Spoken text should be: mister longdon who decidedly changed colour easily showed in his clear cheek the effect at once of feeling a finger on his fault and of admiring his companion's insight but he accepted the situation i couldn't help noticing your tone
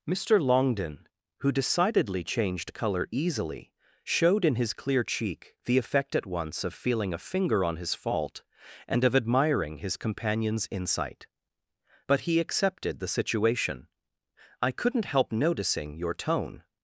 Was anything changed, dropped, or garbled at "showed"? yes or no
no